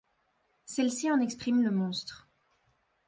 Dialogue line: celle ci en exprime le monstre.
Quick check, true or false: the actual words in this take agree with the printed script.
true